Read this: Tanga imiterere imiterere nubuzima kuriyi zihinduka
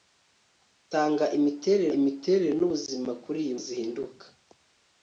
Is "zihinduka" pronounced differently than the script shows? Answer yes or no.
no